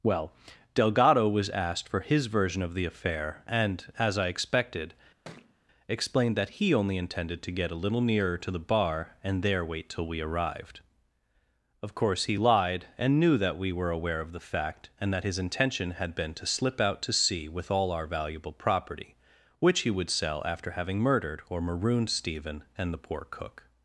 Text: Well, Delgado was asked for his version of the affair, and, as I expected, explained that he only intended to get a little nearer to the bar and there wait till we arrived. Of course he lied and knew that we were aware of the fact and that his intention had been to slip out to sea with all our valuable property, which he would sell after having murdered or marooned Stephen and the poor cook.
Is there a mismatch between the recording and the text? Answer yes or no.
no